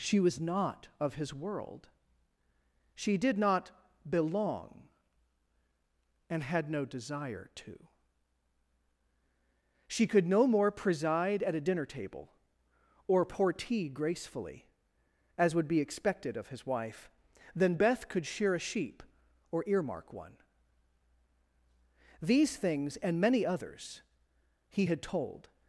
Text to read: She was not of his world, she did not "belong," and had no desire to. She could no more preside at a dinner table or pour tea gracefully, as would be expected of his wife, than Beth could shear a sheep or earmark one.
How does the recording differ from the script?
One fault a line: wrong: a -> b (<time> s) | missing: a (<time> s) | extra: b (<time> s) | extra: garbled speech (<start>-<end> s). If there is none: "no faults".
extra: These things and many others he had told (22.2 s)